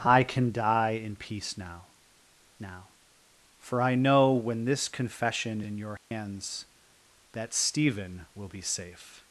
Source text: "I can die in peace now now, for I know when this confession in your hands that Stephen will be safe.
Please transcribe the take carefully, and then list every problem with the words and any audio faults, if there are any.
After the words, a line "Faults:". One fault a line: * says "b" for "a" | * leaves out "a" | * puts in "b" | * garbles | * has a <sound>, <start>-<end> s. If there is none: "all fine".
"I can die in peace now now, for I know when this confession in your hands that Stephen will be safe.
Faults:
* has a dropout, 6.0-6.1 s